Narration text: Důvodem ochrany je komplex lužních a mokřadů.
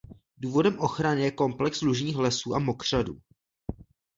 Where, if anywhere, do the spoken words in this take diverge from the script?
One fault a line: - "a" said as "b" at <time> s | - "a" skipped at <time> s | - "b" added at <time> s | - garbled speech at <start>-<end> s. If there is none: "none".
- "lesů" added at 2.1 s